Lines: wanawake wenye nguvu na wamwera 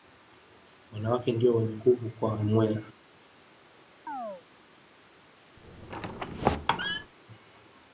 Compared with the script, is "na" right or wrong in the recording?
wrong